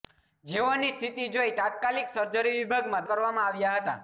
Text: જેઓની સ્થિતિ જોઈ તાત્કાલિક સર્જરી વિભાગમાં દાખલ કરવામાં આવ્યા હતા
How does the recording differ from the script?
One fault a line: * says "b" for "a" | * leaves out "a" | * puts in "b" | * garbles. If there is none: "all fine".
* leaves out "દાખલ"